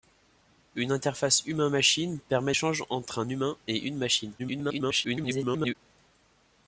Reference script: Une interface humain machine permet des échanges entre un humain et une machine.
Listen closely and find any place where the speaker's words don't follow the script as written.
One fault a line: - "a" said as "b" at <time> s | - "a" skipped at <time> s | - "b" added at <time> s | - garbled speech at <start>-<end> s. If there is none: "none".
- "des" skipped at 2.5 s
- garbled speech at 4.4-5.8 s